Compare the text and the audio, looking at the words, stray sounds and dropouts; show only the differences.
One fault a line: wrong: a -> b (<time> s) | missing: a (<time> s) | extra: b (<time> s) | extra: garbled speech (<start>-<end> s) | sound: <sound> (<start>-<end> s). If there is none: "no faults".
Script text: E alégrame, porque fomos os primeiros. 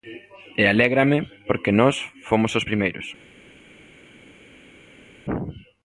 extra: nós (1.7 s)